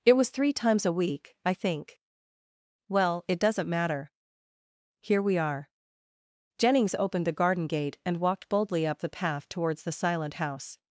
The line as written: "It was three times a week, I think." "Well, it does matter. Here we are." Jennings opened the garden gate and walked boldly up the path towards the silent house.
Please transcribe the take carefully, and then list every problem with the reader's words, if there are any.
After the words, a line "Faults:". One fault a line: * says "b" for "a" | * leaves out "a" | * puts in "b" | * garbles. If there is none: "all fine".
"It was three times a week, I think." "Well, it doesn't matter. Here we are." Jennings opened the garden gate and walked boldly up the path towards the silent house.
Faults:
* says "doesn't" for "does"